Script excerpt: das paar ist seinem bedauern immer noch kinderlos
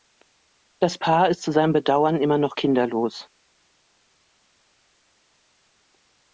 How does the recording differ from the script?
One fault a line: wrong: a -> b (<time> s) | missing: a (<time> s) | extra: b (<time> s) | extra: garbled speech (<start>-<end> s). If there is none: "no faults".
extra: zu (1.4 s)